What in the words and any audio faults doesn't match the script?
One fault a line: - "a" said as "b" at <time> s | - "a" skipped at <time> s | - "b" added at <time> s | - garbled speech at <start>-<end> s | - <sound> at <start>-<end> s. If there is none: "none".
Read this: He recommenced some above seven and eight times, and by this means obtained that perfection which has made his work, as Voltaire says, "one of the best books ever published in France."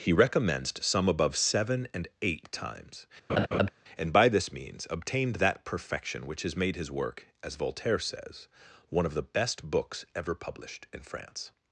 - laugh at 3.3-3.7 s